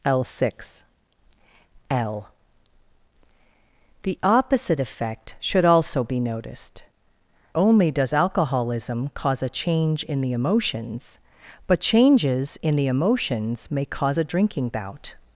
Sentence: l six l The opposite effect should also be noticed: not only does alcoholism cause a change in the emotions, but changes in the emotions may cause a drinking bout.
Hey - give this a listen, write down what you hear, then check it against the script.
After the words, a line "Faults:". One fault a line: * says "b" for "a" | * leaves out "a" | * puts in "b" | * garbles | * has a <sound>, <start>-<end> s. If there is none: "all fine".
l six l The opposite effect should also be noticed: only does alcoholism cause a change in the emotions, but changes in the emotions may cause a drinking bout.
Faults:
* leaves out "not"